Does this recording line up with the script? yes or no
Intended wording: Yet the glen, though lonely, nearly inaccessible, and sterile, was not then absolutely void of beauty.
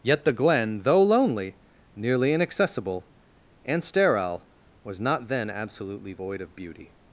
yes